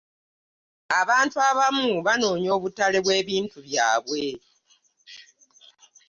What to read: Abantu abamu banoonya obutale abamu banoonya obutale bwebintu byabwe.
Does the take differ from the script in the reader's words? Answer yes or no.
yes